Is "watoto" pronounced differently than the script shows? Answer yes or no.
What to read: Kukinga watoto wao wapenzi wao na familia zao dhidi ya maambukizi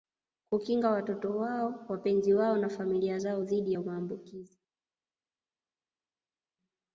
no